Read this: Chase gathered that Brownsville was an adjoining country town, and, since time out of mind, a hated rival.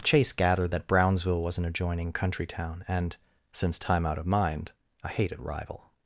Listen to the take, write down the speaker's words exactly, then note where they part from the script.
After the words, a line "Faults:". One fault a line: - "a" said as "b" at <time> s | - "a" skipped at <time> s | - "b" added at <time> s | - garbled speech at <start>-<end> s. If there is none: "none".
Chase gathered that Brownsville was an adjoining country town, and, since time out of mind, a hated rival.
Faults:
none